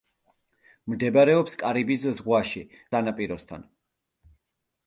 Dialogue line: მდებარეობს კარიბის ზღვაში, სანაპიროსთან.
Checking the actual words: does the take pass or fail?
pass